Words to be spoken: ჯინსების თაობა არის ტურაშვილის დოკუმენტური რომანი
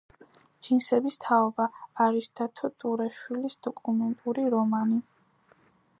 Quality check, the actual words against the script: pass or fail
fail